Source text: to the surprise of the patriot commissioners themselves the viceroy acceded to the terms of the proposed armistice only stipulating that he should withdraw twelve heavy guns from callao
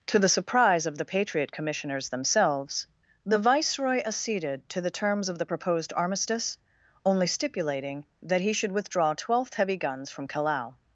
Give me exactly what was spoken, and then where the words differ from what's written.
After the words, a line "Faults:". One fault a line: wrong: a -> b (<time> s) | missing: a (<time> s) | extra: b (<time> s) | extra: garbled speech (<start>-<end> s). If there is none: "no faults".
to the surprise of the patriot commissioners themselves the viceroy acceded to the terms of the proposed armistice only stipulating that he should withdraw twelfth heavy guns from callao
Faults:
wrong: twelve -> twelfth (9.1 s)